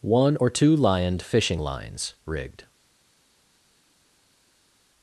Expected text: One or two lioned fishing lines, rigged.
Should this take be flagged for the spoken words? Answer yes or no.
no